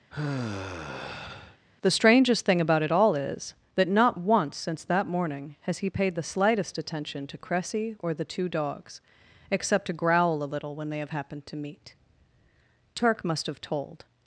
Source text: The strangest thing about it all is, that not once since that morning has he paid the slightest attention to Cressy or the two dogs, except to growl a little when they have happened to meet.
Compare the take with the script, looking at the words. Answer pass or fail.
fail